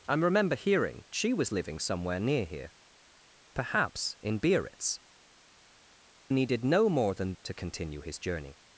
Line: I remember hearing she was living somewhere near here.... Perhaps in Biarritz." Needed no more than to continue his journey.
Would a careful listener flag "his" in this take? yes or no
no